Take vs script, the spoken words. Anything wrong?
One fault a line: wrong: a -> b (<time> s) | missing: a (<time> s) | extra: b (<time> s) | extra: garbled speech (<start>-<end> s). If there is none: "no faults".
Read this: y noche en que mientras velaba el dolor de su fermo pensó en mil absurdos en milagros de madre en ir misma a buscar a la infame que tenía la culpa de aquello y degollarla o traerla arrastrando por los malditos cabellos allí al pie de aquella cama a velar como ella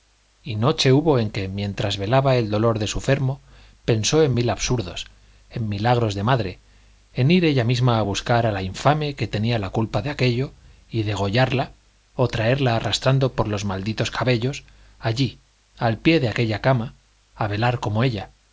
extra: hubo (0.9 s)
extra: ella (7.4 s)